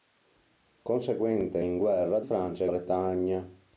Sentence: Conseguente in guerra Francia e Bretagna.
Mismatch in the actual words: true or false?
false